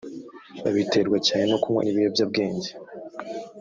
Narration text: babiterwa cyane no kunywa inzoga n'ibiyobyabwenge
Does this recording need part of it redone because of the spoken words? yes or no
yes